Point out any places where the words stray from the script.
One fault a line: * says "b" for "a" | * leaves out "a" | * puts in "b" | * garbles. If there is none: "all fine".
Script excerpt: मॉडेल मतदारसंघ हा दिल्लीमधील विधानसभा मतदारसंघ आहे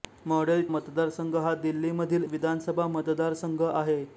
all fine